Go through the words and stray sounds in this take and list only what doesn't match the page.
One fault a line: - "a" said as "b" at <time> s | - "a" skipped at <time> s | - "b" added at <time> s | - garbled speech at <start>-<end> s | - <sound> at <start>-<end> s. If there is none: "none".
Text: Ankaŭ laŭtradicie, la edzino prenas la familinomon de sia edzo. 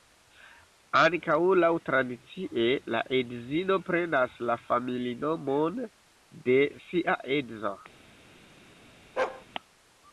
- bark at 9.2-9.4 s